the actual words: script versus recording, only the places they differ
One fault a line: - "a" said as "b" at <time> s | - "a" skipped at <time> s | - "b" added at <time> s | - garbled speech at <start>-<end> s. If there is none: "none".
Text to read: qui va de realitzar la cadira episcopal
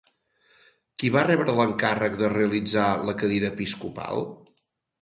- "rebre l'encàrrec" added at 1.3 s